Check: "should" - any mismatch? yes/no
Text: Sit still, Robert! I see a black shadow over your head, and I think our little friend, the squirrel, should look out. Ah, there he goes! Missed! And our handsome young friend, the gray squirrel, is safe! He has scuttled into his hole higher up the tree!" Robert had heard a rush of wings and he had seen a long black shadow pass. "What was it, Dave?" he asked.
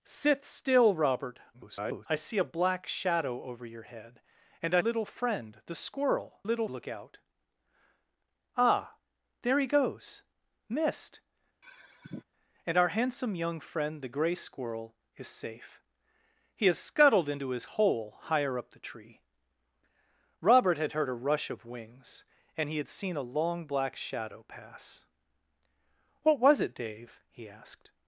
yes